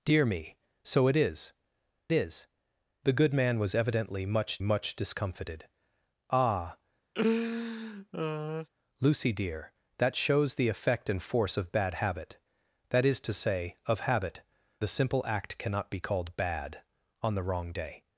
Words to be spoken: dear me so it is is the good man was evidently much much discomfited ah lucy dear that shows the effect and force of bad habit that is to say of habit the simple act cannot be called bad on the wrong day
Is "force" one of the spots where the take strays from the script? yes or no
no